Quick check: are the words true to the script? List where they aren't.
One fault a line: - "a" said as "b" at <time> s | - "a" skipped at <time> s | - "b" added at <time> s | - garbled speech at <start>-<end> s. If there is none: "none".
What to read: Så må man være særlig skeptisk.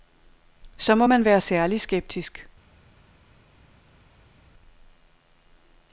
none